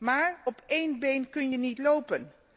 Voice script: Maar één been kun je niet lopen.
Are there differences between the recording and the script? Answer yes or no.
yes